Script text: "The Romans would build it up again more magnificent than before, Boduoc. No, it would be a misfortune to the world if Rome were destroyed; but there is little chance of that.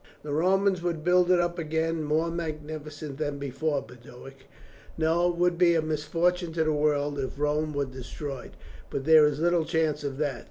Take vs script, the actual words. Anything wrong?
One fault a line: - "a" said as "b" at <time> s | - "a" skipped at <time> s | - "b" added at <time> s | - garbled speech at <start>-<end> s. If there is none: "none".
none